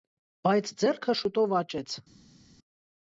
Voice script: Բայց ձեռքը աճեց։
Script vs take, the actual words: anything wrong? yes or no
yes